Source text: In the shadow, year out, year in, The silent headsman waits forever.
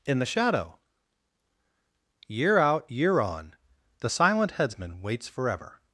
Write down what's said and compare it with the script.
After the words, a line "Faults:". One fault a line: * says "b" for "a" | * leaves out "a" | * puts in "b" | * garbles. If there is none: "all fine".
In the shadow, year out, year on, The silent headsman waits forever.
Faults:
* says "on" for "in"